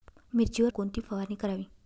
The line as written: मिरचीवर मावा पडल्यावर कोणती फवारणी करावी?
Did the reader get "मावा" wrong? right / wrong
wrong